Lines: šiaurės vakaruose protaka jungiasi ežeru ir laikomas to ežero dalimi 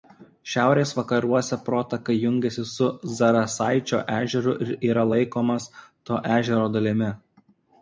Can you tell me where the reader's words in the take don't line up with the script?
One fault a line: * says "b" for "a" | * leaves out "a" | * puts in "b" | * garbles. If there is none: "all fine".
* puts in "su zarasaičio"
* puts in "yra"